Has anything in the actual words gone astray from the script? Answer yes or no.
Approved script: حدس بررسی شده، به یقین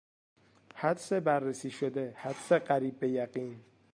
yes